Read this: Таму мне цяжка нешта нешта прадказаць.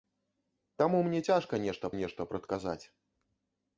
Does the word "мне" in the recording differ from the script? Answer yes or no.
no